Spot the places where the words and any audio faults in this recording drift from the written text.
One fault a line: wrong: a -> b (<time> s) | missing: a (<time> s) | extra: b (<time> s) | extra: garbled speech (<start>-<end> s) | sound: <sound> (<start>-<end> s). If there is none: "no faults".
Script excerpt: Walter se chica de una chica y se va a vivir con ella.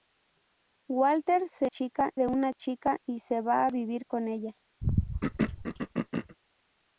sound: throat clearing (4.8-6.4 s)